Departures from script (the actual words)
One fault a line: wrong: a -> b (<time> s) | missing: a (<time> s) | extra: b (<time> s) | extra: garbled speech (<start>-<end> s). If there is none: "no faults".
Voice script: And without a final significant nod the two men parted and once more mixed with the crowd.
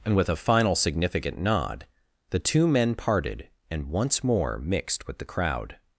wrong: without -> with (0.1 s)